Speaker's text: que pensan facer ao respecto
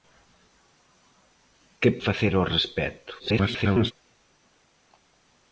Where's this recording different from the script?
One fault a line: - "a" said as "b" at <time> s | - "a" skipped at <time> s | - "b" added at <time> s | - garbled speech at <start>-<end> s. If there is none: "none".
- "pensan" skipped at 1.9 s
- garbled speech at 3.2-3.9 s